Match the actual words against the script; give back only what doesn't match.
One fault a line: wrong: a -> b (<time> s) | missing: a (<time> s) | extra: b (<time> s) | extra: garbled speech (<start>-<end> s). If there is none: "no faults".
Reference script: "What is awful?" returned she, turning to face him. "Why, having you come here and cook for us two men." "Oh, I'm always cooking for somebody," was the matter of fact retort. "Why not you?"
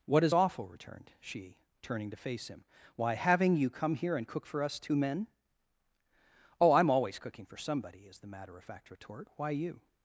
wrong: was -> is (8.1 s)
missing: not (9.5 s)